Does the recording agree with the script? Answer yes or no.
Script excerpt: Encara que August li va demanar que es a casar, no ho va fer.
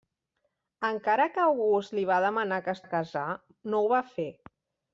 yes